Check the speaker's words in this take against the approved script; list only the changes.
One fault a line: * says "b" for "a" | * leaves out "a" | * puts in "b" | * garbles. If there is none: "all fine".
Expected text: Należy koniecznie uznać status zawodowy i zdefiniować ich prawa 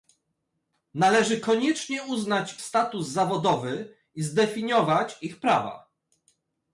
all fine